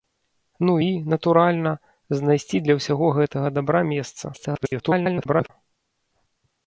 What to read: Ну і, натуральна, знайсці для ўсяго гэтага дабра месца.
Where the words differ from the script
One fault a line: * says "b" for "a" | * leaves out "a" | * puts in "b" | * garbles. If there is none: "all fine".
* garbles